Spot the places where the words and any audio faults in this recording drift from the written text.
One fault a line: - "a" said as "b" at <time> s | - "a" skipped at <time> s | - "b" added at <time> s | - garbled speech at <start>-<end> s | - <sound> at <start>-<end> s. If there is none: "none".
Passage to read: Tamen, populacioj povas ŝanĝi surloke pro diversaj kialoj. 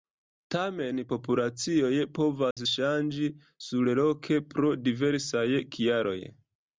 - dropout at 2.5-2.6 s